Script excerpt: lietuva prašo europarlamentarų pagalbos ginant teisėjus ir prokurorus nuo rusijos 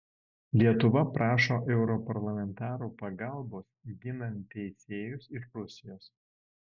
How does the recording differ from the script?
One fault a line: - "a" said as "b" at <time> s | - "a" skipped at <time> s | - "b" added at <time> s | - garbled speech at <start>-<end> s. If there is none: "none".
- "prokurorus nuo" skipped at 5.5 s